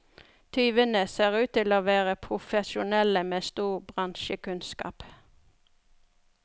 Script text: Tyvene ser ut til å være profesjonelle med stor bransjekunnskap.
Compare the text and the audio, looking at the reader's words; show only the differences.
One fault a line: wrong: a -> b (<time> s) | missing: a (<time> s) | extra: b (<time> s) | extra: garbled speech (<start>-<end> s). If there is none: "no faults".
no faults